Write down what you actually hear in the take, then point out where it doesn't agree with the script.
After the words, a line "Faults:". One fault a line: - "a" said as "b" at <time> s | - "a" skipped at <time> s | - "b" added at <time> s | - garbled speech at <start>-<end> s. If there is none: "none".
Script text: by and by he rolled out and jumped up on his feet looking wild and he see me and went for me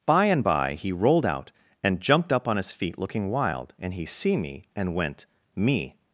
by and by he rolled out and jumped up on his feet looking wild and he see me and went me
Faults:
- "for" skipped at 5.3 s